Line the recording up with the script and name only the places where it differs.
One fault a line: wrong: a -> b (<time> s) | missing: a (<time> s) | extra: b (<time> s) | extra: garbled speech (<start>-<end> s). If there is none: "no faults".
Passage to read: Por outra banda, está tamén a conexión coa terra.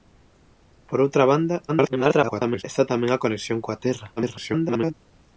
extra: garbled speech (1.7-2.6 s)
extra: garbled speech (4.2-4.9 s)